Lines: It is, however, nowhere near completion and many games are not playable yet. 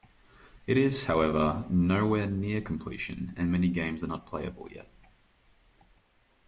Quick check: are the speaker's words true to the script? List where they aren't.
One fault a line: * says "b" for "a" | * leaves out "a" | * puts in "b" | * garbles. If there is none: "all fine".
all fine